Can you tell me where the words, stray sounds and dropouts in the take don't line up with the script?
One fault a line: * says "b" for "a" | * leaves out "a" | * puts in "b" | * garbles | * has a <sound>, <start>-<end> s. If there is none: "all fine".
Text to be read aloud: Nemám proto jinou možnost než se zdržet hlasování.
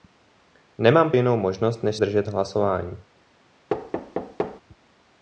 * leaves out "proto"
* leaves out "se"
* has a thud, 3.7-4.6 s